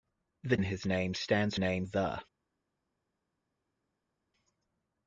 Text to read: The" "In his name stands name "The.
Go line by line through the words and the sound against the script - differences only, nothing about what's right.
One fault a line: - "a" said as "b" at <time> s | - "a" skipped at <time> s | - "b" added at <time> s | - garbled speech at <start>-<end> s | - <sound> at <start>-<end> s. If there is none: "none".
none